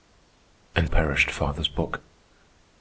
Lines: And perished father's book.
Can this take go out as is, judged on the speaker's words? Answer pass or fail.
pass